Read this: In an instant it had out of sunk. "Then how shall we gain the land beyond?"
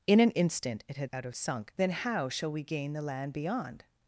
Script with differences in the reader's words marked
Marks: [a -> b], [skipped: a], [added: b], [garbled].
In an instant it had out of sunk. "Then how shall we gain the land beyond?"